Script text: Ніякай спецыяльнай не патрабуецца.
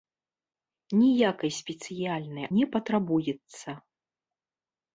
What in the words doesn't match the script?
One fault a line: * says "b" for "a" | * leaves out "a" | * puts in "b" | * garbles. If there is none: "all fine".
all fine